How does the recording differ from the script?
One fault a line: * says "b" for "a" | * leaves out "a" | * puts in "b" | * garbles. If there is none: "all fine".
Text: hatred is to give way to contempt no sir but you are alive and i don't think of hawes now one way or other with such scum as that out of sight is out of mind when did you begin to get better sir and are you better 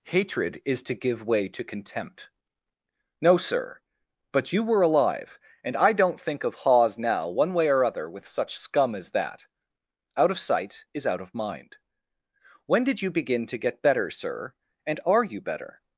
* says "were" for "are"